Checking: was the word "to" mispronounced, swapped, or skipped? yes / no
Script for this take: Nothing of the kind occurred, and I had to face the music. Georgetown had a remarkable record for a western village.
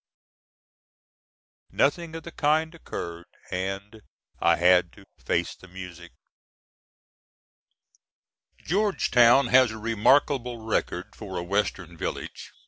no